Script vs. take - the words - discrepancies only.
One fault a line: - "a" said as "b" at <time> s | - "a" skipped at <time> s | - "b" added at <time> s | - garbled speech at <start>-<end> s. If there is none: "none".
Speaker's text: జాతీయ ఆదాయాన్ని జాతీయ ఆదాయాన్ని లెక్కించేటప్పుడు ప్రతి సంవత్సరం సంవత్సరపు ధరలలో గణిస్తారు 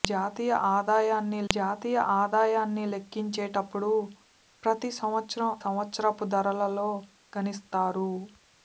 none